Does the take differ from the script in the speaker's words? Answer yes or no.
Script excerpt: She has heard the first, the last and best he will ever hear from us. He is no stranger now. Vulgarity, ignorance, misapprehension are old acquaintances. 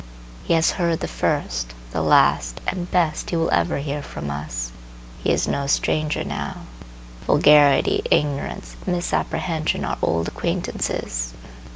yes